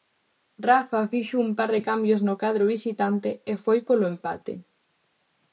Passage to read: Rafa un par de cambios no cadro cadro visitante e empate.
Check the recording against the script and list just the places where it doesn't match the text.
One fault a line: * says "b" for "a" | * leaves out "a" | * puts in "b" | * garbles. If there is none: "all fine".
* puts in "fixo"
* leaves out "cadro"
* puts in "foi polo"